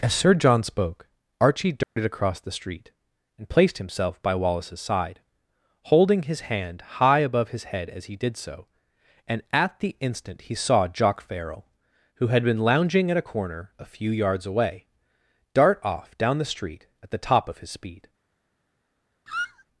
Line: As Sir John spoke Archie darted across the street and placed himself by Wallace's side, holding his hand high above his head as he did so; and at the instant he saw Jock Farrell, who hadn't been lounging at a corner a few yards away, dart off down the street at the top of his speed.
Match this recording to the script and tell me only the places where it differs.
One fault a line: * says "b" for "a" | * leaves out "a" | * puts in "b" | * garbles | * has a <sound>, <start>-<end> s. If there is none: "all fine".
* has a dropout, 1.8-2.0 s
* says "had" for "hadn't"
* has a squeak, 19.3-19.6 s